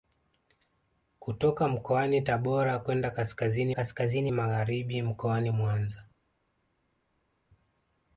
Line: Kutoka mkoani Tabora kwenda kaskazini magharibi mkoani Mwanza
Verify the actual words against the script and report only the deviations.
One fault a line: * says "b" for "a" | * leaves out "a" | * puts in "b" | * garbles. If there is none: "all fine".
* puts in "kaskazini"